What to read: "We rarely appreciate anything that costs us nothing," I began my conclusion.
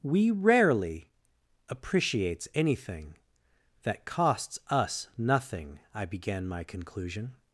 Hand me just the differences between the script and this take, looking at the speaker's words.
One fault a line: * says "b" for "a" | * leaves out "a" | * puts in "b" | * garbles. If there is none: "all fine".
* says "appreciates" for "appreciate"